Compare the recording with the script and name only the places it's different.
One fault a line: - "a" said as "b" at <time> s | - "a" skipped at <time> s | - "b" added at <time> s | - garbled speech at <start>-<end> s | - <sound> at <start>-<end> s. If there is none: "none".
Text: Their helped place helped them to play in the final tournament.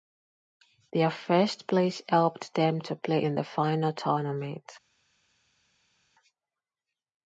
- "helped" said as "first" at 1.1 s